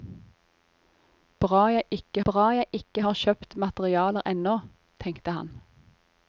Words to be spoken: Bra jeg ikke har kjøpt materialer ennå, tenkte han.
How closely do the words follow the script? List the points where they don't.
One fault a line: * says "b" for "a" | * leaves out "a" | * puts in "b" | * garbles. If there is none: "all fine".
* puts in "bra jeg ikke"